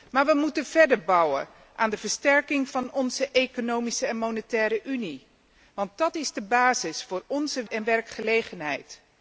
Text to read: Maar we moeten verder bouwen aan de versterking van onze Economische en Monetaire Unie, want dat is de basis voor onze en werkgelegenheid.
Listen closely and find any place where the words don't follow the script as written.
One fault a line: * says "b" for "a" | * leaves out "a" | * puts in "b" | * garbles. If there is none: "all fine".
all fine